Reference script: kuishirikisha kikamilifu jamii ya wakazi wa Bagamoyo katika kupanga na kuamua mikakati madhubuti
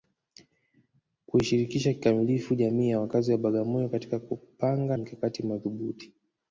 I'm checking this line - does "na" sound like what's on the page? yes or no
no